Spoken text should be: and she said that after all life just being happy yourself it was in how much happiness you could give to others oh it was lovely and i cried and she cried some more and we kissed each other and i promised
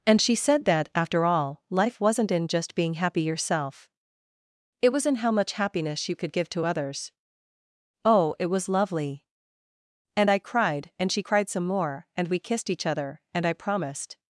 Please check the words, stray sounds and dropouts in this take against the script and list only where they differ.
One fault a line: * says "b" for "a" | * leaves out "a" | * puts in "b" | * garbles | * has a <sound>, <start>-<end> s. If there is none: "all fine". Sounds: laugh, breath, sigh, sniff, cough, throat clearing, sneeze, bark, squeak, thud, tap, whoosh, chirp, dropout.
* puts in "wasn't in"